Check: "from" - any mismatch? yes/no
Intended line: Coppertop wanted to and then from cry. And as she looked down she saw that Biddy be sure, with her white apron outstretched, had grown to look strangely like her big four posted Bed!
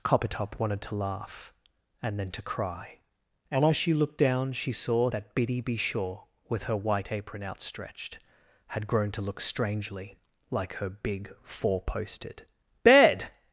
yes